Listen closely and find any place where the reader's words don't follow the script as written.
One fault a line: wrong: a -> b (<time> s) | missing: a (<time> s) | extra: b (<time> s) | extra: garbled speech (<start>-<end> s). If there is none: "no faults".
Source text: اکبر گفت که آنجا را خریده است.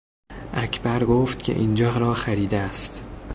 wrong: آنجا -> اینجا (1.5 s)